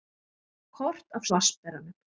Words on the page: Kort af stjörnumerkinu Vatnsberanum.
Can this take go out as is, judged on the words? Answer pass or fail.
fail